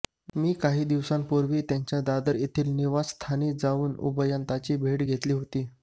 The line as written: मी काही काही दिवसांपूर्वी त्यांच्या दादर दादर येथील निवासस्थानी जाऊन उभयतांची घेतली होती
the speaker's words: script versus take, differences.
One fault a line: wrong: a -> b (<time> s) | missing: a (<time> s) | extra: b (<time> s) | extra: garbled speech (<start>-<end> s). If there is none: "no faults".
missing: काही (0.8 s)
missing: दादर (2.4 s)
extra: भेट (4.8 s)